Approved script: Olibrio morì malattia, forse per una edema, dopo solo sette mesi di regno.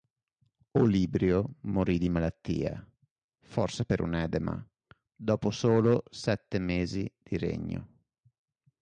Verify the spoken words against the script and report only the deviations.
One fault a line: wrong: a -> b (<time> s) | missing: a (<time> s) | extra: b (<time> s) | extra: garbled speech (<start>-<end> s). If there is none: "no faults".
extra: di (2.0 s)
wrong: una -> un (4.0 s)